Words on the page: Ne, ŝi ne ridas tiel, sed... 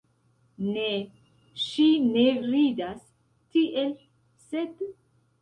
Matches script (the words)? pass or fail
pass